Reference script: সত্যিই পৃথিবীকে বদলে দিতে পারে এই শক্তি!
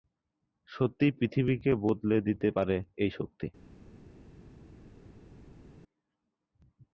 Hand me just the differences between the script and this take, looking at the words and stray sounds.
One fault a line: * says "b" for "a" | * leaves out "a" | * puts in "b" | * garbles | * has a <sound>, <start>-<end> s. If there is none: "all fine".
all fine